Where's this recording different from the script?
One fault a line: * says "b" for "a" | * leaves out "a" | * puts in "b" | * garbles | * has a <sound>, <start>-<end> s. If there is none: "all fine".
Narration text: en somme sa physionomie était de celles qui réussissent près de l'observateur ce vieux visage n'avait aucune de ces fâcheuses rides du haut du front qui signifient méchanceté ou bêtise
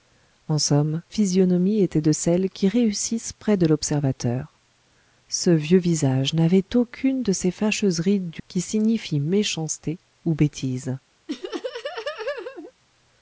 * leaves out "sa"
* leaves out "haut du front"
* has a laugh, 11.3-12.7 s